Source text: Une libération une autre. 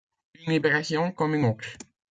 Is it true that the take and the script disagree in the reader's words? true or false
true